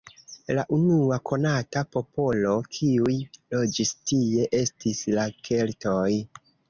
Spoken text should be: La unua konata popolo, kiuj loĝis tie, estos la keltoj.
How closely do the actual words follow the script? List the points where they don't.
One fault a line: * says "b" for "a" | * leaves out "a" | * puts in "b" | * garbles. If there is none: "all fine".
* says "estis" for "estos"